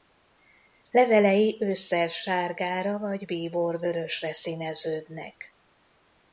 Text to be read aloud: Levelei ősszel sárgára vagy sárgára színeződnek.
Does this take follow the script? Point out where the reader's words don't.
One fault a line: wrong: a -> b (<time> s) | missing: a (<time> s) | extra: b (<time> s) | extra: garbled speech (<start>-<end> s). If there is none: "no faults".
wrong: sárgára -> bíborvörösre (3.3 s)